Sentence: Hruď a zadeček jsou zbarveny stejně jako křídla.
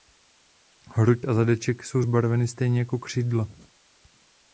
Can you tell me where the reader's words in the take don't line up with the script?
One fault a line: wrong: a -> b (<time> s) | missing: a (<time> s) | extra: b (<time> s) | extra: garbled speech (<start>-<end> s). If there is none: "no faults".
no faults